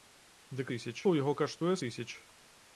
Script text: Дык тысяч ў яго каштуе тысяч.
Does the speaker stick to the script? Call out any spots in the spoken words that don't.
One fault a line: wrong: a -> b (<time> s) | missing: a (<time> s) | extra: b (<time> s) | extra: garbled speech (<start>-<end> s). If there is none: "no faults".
no faults